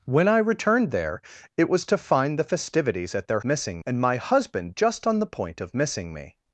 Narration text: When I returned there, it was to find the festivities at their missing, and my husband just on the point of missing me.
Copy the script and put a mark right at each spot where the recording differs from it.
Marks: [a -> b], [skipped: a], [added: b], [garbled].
When I returned there, it was to find the festivities at their missing, and my husband just on the point of missing me.